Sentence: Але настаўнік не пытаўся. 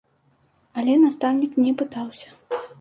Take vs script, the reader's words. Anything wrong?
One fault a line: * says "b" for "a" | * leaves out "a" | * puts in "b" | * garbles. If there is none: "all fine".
all fine